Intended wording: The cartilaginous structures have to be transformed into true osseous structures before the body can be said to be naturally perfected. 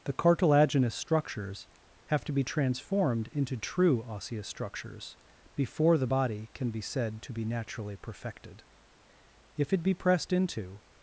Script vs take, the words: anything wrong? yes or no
yes